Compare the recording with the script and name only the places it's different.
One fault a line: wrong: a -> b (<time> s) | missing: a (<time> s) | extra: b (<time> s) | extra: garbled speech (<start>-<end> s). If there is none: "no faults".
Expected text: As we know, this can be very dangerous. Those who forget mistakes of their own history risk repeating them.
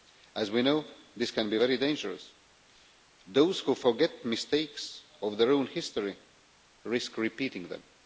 no faults